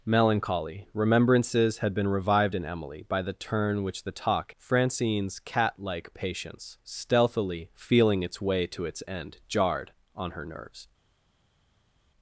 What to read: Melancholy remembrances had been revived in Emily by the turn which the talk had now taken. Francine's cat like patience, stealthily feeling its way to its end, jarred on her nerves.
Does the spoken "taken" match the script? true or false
false